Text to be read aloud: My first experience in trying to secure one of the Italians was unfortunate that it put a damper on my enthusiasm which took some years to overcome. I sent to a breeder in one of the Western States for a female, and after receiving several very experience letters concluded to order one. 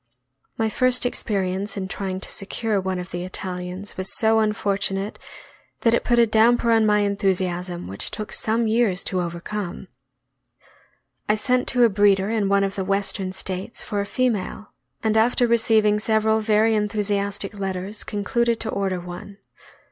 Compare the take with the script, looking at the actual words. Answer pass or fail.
fail